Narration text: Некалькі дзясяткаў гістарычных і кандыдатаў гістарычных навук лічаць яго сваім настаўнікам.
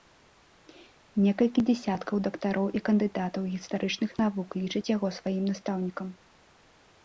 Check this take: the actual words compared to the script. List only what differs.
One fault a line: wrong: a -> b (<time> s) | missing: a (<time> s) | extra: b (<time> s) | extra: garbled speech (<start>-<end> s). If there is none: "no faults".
wrong: гістарычных -> дактароў (2.3 s)